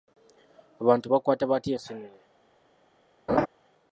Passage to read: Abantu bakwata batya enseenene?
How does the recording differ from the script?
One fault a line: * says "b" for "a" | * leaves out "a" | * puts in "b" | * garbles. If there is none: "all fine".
all fine